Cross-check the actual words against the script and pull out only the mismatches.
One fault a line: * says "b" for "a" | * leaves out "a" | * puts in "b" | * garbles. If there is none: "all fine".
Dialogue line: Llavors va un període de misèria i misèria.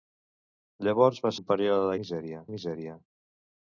all fine